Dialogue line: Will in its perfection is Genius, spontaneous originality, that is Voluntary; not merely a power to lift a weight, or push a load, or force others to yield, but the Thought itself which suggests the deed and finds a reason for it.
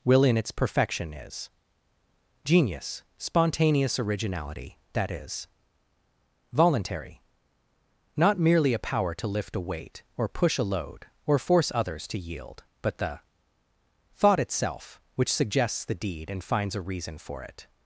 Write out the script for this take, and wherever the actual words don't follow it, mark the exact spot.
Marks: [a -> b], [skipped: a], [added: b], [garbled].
Will in its perfection is Genius, spontaneous originality, that is Voluntary; not merely a power to lift a weight, or push a load, or force others to yield, but the Thought itself which suggests the deed and finds a reason for it.